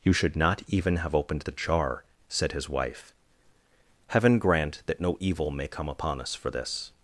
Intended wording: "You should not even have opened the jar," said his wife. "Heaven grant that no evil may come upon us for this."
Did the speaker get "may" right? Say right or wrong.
right